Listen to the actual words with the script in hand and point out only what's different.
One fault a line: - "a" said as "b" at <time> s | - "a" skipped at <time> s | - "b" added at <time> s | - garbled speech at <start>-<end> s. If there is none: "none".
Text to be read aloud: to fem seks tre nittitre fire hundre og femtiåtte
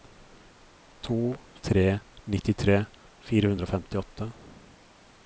- "fem seks" skipped at 1.2 s